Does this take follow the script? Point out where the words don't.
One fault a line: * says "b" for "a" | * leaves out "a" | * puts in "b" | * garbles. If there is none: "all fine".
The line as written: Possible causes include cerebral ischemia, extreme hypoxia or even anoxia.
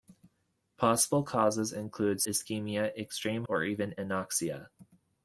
* leaves out "cerebral"
* leaves out "hypoxia"